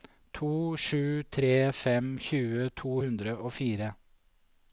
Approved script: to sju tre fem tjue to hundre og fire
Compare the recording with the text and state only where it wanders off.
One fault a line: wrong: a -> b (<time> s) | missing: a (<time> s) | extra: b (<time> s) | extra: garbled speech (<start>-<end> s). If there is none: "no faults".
no faults